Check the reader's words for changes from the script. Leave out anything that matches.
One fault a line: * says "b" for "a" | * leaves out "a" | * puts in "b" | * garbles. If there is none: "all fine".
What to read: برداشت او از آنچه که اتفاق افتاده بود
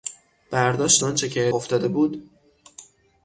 * leaves out "او از"
* leaves out "اتفاق"